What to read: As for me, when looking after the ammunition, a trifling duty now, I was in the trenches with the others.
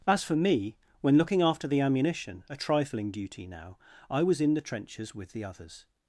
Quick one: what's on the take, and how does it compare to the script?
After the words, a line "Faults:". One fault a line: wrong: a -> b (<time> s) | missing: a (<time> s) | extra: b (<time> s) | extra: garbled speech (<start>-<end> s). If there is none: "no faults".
As for me, when looking after the ammunition, a trifling duty now, I was in the trenches with the others.
Faults:
no faults